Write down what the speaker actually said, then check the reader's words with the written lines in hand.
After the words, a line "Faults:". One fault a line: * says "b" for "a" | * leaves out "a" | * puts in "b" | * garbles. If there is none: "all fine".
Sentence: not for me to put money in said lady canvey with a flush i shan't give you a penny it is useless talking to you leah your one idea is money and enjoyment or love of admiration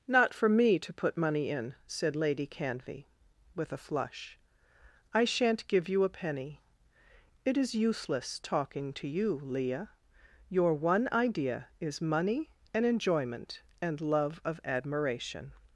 not for me to put money in said lady canvey with a flush i shan't give you a penny it is useless talking to you leah your one idea is money and enjoyment and love of admiration
Faults:
* says "and" for "or"